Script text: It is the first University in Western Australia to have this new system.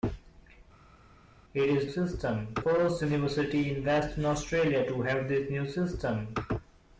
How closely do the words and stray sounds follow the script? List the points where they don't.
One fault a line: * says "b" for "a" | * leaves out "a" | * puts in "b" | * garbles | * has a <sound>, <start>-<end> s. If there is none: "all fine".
* says "system" for "the"